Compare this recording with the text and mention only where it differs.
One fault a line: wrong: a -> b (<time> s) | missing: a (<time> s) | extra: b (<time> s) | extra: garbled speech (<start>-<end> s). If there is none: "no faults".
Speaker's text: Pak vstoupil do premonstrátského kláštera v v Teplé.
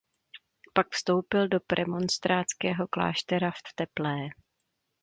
no faults